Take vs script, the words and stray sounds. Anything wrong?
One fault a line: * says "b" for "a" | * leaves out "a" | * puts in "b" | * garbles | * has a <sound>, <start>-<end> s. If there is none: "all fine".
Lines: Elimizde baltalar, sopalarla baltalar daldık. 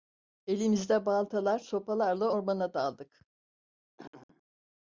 * says "ormana" for "baltalar"
* has a throat clearing, 4.0-4.4 s